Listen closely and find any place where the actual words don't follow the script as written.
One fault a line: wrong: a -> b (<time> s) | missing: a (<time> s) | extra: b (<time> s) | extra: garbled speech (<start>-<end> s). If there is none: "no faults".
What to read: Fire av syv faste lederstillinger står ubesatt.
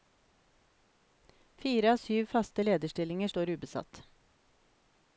no faults